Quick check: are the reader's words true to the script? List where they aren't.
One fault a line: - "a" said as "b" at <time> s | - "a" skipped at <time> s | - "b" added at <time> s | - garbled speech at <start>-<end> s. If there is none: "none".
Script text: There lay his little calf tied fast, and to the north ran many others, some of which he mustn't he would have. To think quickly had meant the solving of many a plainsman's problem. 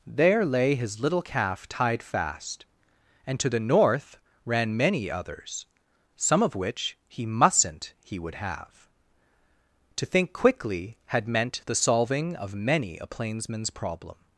none